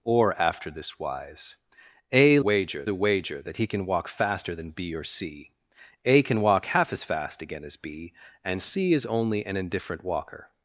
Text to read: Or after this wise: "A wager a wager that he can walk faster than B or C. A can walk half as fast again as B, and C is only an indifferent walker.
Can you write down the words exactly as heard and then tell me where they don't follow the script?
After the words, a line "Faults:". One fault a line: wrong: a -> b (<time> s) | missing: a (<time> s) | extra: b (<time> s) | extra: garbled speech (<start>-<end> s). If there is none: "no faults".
Or after this wise: "A wager a wager that he can walk faster than B or C. A can walk half as fast again as B, and C is only an indifferent walker.
Faults:
no faults